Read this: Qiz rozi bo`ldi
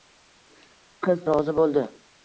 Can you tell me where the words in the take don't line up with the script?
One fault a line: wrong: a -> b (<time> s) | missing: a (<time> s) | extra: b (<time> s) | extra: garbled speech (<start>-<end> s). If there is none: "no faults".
no faults